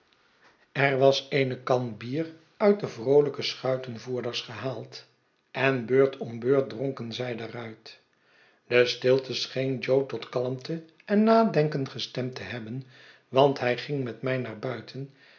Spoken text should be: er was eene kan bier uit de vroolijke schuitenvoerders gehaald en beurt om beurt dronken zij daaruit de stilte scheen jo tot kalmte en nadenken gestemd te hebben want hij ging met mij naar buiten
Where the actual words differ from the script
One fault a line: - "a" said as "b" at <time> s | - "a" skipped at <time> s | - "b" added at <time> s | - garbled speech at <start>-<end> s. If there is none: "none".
none